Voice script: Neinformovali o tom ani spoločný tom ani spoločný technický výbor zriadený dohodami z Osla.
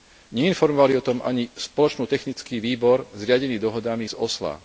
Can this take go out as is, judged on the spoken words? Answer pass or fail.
fail